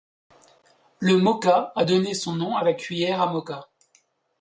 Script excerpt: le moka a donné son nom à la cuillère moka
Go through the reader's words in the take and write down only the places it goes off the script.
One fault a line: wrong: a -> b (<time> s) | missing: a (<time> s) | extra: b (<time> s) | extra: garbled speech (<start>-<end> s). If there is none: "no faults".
extra: à (3.2 s)